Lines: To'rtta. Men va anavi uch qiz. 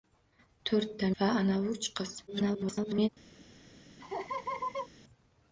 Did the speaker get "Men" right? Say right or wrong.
wrong